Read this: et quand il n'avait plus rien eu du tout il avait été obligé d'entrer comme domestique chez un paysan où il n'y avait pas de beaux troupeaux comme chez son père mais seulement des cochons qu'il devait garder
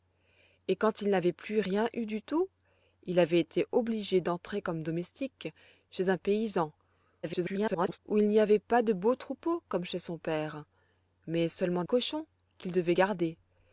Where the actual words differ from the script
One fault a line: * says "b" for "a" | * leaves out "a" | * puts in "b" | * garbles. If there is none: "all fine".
* garbles
* leaves out "des"